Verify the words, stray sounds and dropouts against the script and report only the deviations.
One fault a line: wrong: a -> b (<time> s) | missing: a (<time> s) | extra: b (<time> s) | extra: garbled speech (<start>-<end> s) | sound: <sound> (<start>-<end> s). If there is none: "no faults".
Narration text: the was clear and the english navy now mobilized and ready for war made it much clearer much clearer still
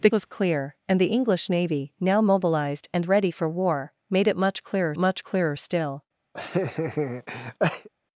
sound: laugh (6.3-7.9 s)